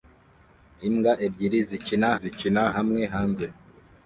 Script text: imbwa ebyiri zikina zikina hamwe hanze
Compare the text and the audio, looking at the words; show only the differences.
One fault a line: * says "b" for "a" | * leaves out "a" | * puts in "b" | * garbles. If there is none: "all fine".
all fine